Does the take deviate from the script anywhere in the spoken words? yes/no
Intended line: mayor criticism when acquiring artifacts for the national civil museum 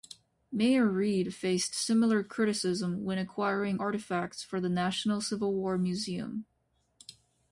yes